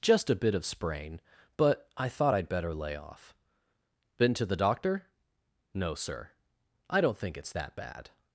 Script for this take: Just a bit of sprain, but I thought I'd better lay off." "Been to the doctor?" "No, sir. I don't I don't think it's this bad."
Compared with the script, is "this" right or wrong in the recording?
wrong